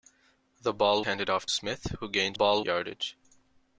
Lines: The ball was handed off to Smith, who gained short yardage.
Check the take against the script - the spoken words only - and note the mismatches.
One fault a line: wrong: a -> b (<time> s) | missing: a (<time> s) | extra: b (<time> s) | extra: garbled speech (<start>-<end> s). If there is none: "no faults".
missing: was (1.0 s)
missing: to (1.5 s)
wrong: short -> ball (2.3 s)